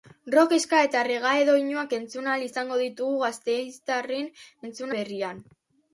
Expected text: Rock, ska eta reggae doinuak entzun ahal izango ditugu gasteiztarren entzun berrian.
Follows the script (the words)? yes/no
yes